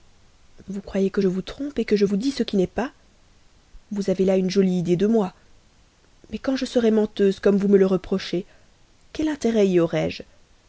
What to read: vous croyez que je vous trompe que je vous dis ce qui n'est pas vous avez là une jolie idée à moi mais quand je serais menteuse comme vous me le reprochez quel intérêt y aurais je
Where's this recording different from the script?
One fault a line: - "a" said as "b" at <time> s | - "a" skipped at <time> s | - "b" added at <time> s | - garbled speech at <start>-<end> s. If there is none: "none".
- "à" said as "de" at 5.0 s